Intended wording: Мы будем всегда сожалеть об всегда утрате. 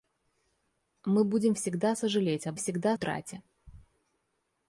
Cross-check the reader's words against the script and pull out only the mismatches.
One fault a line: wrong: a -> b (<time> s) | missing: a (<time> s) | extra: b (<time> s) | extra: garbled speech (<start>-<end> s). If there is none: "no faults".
no faults